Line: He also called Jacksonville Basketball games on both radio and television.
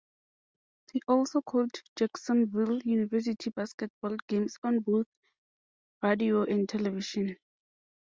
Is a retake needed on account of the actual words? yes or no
yes